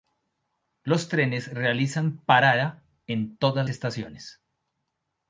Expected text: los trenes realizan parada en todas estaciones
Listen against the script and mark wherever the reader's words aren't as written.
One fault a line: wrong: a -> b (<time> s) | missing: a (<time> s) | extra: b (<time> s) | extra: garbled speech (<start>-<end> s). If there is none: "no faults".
no faults